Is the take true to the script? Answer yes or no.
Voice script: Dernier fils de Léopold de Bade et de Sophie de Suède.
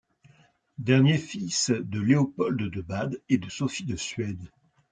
yes